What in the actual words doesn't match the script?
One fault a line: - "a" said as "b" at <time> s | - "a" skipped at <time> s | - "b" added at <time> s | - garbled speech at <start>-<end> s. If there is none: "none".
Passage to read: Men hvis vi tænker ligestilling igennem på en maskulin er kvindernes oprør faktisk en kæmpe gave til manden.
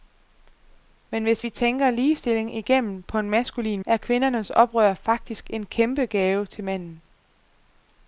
none